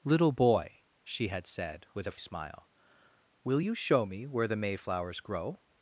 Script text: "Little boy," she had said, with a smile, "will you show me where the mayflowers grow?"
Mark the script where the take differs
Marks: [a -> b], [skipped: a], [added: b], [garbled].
"Little boy," she had said, with a smile, "will you show me where the mayflowers grow?"